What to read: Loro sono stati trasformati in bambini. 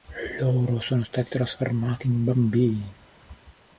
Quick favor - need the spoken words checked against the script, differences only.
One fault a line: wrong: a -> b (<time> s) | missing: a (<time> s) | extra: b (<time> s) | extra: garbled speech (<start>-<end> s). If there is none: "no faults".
no faults